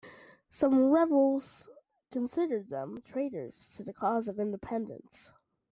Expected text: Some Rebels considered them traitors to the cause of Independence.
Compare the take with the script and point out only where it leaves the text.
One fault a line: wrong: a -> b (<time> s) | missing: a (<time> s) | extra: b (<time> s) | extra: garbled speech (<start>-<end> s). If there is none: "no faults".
no faults